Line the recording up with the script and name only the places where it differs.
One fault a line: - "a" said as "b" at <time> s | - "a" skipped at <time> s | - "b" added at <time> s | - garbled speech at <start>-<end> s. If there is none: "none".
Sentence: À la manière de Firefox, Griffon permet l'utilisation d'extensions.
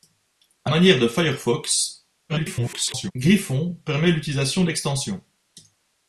- "la" skipped at 0.7 s
- garbled speech at 2.3-3.1 s